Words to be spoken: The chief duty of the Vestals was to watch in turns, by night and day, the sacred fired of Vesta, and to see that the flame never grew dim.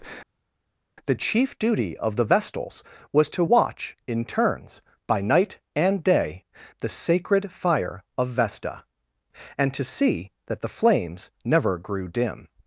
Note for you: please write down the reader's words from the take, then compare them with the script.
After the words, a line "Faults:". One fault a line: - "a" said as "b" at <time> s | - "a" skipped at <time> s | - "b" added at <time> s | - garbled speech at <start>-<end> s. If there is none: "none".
The chief duty of the Vestals was to watch in turns, by night and day, the sacred fire of Vesta, and to see that the flames never grew dim.
Faults:
- "fired" said as "fire" at 7.5 s
- "flame" said as "flames" at 10.7 s